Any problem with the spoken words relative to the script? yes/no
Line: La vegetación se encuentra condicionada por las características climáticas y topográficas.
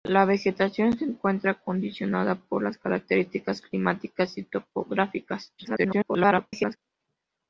yes